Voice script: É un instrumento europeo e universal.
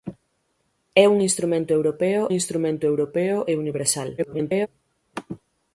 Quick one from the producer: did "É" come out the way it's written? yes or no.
yes